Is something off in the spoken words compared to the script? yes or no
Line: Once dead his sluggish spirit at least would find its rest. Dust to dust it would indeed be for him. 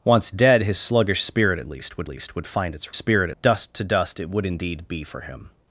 yes